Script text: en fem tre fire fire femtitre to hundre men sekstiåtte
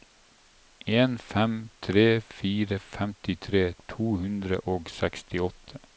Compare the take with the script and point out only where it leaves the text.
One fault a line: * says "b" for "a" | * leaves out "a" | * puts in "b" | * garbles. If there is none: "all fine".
* leaves out "fire"
* says "og" for "men"